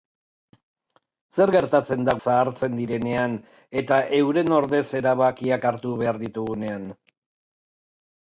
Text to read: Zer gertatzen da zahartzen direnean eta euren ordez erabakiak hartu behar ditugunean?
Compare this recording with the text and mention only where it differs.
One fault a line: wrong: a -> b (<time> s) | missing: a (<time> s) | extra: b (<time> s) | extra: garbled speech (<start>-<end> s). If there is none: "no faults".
no faults